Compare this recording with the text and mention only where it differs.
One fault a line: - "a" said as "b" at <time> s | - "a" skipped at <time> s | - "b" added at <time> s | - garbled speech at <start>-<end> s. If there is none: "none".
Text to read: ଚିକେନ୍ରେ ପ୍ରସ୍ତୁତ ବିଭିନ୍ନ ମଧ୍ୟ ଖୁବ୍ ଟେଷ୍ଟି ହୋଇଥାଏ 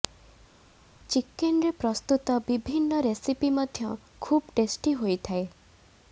- "ରେସିପି" added at 3.1 s